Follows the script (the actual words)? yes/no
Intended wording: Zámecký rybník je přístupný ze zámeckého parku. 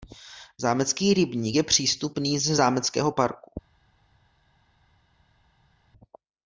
yes